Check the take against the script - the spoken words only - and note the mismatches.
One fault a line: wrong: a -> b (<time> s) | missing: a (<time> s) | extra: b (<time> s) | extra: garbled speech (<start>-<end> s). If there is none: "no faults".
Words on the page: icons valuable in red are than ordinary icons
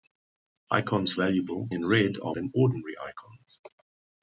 no faults